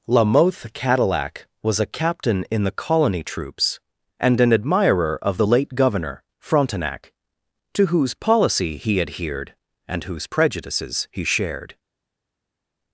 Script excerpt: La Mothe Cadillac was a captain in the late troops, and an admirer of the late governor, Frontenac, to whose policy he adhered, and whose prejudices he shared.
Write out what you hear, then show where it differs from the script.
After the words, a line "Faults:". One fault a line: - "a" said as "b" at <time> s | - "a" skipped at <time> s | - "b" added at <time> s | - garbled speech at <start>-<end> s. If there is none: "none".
La Mothe Cadillac was a captain in the colony troops, and an admirer of the late governor, Frontenac, to whose policy he adhered, and whose prejudices he shared.
Faults:
- "late" said as "colony" at 2.7 s